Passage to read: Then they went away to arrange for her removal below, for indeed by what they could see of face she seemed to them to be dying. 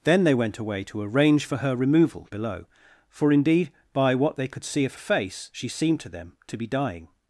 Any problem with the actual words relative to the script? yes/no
no